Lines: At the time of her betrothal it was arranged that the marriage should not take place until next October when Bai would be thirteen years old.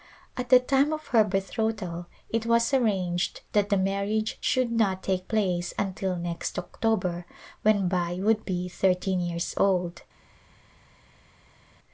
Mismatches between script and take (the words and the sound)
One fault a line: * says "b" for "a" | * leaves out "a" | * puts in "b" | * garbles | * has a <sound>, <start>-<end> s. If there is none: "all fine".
all fine